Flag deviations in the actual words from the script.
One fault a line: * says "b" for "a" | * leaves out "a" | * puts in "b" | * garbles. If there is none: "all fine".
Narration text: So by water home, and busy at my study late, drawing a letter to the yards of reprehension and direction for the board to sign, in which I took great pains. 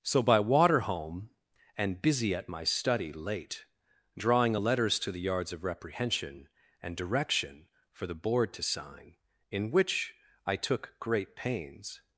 * says "letters" for "letter"